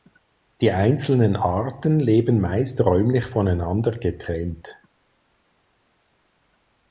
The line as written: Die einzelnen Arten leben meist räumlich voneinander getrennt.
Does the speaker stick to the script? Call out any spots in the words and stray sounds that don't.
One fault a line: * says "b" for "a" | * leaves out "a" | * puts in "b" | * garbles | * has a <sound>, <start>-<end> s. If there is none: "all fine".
all fine